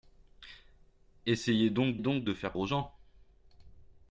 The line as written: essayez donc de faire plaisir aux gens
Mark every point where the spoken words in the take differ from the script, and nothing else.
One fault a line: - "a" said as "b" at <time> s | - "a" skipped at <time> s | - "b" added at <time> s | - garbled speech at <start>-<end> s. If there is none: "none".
- "donc" added at 2.0 s
- "plaisir" skipped at 2.5 s